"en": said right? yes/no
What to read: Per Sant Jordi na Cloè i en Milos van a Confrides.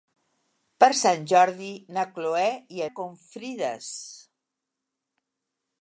no